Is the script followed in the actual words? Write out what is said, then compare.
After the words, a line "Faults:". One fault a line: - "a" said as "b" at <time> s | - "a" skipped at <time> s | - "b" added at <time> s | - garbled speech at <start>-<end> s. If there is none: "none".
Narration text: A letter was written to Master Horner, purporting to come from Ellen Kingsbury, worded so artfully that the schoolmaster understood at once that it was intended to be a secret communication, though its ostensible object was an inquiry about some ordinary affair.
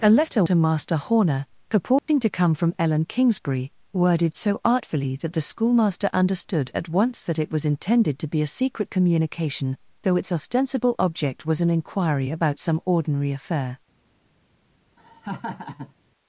A letter to Master Horner, purporting to come from Ellen Kingsbury, worded so artfully that the schoolmaster understood at once that it was intended to be a secret communication, though its ostensible object was an inquiry about some ordinary affair.
Faults:
- "was written" skipped at 0.4 s